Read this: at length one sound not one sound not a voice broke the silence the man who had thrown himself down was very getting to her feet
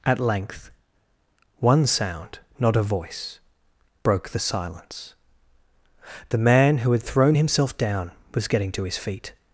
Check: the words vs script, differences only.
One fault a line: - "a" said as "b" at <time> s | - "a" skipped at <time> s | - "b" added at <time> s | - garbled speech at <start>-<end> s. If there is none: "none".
- "one sound not" skipped at 2.8 s
- "very" skipped at 8.5 s
- "her" said as "his" at 8.8 s